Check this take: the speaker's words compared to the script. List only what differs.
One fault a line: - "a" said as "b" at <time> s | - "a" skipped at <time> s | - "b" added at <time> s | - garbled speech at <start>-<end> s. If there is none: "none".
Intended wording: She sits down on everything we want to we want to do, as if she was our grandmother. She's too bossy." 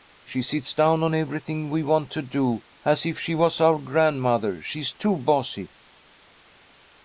- "we want to" skipped at 2.2 s